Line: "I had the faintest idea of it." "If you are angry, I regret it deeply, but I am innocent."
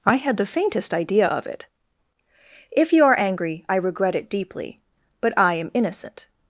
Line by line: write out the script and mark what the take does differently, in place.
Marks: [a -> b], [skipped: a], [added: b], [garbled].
"I had the faintest idea of it." "If you are angry, I regret it deeply, but I am innocent."